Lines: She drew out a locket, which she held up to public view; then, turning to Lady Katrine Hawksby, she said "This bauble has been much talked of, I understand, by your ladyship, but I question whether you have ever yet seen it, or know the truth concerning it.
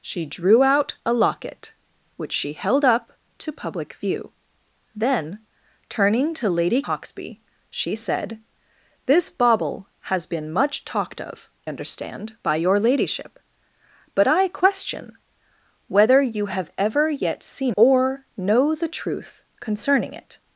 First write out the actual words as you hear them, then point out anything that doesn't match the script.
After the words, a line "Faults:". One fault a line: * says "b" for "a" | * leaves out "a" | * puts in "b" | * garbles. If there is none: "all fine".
She drew out a locket, which she held up to public view; then, turning to Lady Hawksby, she said "This bauble has been much talked of, understand, by your ladyship, but I question whether you have ever yet seen or know the truth concerning it.
Faults:
* leaves out "Katrine"
* leaves out "I"
* leaves out "it"